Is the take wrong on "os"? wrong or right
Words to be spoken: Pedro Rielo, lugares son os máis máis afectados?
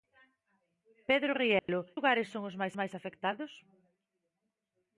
right